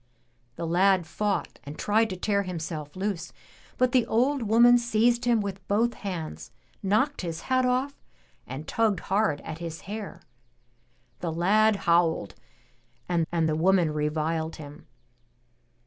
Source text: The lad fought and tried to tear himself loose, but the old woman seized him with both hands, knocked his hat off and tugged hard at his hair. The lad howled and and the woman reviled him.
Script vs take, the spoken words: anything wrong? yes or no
no